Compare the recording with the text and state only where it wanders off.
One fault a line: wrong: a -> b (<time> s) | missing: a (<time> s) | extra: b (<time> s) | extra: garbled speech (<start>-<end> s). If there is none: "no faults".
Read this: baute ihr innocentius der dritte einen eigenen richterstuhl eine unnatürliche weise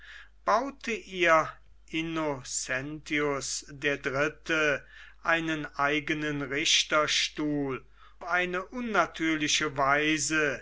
no faults